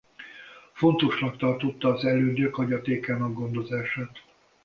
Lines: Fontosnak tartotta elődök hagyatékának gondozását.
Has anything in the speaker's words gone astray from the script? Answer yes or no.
yes